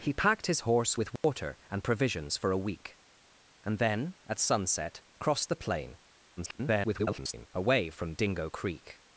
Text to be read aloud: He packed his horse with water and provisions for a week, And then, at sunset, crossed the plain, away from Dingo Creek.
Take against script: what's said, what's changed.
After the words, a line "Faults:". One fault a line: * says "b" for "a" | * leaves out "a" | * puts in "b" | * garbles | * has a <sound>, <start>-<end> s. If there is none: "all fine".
He packed his horse with water and provisions for a week, And then, at sunset, crossed the plain, [garbled] away from Dingo Creek.
Faults:
* has a dropout, 1.2-1.2 s
* garbles